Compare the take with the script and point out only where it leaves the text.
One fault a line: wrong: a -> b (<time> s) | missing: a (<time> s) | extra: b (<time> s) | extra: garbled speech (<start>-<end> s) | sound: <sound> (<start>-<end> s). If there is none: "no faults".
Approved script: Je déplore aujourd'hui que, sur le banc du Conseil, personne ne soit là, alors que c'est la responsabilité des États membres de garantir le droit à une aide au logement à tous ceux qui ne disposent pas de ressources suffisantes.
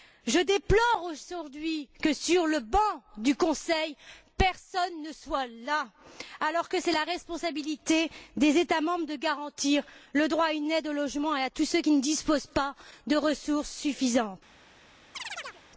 sound: chirp (15.1-15.6 s)